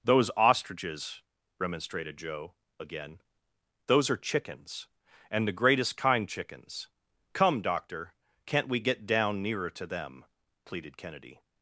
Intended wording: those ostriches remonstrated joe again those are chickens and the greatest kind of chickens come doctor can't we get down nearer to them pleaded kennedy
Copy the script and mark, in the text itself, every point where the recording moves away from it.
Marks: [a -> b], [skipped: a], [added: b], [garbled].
those ostriches remonstrated joe again those are chickens and the greatest kind [skipped: of] chickens come doctor can't we get down nearer to them pleaded kennedy